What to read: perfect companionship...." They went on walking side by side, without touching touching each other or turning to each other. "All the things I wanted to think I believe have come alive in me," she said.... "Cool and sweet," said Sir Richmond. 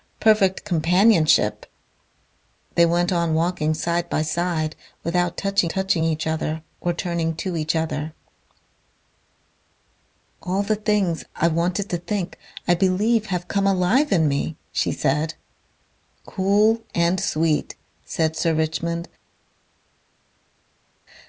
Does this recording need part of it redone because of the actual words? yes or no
no